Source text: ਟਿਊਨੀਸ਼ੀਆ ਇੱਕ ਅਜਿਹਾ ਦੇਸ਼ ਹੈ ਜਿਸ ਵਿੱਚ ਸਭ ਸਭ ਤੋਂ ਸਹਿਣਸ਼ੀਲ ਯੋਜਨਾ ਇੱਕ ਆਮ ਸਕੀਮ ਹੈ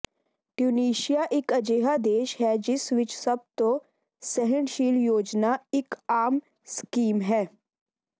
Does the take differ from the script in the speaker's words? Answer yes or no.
yes